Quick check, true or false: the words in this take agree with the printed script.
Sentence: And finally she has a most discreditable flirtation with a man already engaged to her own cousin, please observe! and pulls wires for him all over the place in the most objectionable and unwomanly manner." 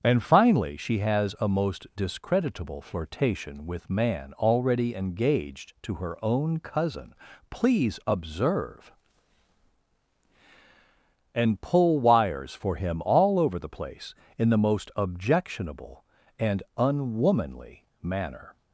false